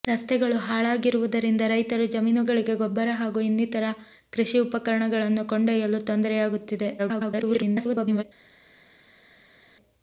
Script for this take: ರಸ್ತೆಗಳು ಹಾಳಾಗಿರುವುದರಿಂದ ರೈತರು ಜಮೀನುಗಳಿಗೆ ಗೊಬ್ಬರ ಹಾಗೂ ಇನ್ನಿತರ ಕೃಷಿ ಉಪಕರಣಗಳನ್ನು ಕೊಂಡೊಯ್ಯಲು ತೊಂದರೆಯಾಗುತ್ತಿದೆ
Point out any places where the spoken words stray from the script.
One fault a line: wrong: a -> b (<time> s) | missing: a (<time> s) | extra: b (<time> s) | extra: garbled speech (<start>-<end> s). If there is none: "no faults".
extra: garbled speech (7.0-8.2 s)